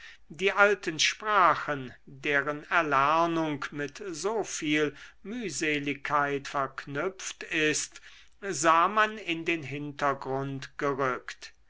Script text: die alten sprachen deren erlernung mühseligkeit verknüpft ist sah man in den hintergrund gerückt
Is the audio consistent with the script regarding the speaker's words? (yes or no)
no